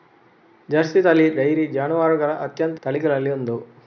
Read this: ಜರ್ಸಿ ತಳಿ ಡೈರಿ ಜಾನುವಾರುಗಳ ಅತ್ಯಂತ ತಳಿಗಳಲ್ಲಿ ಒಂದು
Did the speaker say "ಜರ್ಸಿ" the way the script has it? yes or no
yes